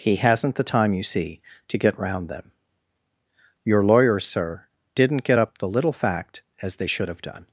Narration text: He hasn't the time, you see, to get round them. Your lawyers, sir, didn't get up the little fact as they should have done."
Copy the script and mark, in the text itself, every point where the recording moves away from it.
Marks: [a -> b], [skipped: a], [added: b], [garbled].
He hasn't the time, you see, to get round them. Your lawyers, sir, didn't get up the little fact as they should have done."